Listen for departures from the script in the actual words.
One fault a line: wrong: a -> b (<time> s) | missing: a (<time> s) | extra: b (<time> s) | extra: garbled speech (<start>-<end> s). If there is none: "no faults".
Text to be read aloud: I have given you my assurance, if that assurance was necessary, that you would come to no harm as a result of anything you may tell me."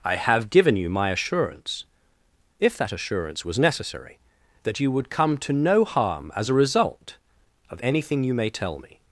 no faults